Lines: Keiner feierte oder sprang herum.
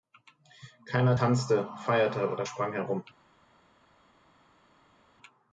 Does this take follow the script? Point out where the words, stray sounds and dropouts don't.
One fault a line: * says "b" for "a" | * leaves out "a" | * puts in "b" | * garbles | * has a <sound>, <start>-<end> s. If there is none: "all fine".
* puts in "tanzte"